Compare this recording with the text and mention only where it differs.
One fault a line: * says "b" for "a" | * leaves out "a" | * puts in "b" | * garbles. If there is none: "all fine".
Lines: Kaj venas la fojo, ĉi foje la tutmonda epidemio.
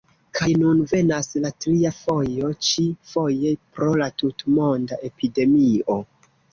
* puts in "nun"
* puts in "tria"
* puts in "pro"